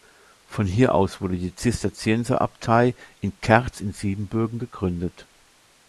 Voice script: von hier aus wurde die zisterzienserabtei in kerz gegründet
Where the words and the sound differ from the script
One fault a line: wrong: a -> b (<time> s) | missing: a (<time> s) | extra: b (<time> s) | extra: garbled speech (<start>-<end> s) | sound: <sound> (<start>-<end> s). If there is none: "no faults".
extra: in siebenbürgen (3.8 s)